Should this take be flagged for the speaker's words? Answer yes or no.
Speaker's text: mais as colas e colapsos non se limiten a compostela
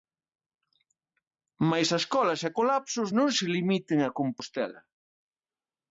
no